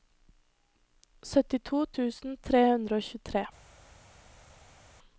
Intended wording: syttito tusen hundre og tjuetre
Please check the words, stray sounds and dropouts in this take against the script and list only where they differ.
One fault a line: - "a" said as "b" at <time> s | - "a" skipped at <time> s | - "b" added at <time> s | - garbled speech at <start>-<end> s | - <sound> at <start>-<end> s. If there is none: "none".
- "tre" added at 2.5 s